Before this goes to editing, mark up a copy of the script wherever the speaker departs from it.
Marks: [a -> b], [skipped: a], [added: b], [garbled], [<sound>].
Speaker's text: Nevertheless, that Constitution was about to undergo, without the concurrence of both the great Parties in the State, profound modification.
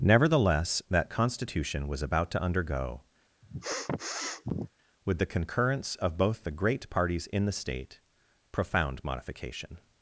Nevertheless, that Constitution was about to undergo, [sniff] [without -> with] the concurrence of both the great Parties in the State, profound modification.